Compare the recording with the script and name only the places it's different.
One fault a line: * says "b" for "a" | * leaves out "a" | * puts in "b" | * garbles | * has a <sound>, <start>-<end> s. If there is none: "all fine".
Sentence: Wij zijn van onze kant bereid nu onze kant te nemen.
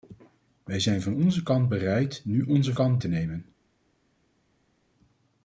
all fine